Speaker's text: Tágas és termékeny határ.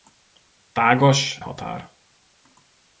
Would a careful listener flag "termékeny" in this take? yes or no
yes